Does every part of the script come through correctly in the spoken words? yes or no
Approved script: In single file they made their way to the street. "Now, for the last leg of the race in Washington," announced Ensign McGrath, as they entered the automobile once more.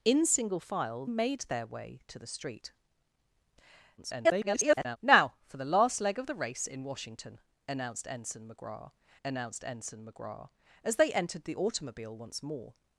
no